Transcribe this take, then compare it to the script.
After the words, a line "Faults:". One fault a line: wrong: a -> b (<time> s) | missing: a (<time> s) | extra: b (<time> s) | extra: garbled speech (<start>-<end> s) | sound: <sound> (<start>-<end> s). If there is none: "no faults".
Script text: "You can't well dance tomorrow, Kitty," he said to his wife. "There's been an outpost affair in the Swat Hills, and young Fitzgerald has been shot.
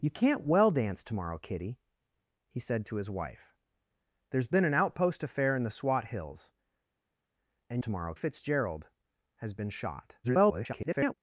"You can't well dance tomorrow, Kitty," he said to his wife. "There's been an outpost affair in the Swat Hills, and tomorrow Fitzgerald has been shot. [garbled]
Faults:
wrong: young -> tomorrow (7.8 s)
extra: garbled speech (10.2-11.1 s)